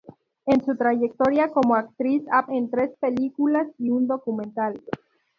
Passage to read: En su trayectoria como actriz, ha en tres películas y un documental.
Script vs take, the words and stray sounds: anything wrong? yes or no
no